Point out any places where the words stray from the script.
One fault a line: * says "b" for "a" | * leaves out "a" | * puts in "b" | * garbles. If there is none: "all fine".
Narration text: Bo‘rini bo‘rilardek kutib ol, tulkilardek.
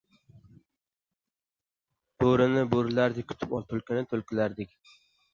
* puts in "tulkini"